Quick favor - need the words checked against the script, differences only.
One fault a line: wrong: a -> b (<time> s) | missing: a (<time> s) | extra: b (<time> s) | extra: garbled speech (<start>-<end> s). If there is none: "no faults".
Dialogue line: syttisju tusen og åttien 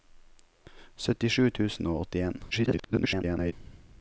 extra: garbled speech (2.5-3.5 s)